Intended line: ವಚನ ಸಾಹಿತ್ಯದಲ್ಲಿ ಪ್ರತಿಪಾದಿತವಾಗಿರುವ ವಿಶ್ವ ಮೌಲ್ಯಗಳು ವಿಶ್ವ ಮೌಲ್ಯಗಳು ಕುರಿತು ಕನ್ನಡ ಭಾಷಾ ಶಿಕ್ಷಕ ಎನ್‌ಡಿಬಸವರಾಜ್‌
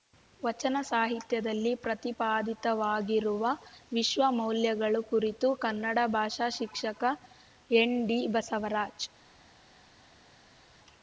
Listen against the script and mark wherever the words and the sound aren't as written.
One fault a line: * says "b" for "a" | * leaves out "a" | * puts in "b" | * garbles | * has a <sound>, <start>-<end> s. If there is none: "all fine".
* leaves out "ವಿಶ್ವ ಮೌಲ್ಯಗಳು"